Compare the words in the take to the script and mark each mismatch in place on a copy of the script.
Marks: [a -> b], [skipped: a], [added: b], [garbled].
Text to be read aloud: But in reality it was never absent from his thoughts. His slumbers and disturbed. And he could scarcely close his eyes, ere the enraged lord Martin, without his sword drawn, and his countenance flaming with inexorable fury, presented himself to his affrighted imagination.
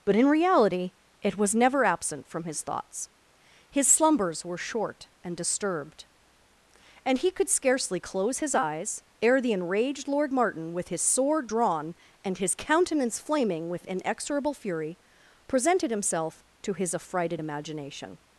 But in reality it was never absent from his thoughts. His slumbers [added: were short] and disturbed. And he could scarcely close his eyes, ere the enraged lord Martin, [without -> with] his sword drawn, and his countenance flaming with inexorable fury, presented himself to his affrighted imagination.